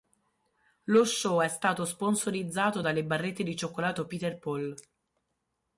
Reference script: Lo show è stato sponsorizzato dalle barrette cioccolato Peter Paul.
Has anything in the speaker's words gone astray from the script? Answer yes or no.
yes